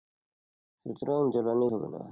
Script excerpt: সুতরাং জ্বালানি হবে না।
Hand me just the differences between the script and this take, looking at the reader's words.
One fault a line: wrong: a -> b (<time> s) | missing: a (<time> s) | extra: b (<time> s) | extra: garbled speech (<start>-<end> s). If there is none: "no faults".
no faults